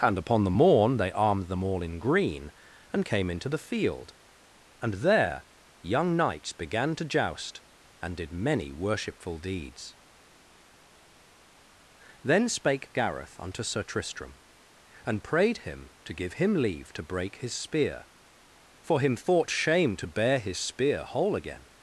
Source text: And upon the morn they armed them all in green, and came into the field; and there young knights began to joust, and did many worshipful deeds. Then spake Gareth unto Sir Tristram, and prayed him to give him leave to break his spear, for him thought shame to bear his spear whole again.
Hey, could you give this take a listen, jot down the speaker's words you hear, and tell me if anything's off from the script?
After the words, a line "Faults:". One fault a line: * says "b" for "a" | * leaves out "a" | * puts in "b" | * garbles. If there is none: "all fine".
And upon the morn they armed them all in green, and came into the field; and there young knights began to joust, and did many worshipful deeds. Then spake Gareth unto Sir Tristram, and prayed him to give him leave to break his spear, for him thought shame to bear his spear whole again.
Faults:
all fine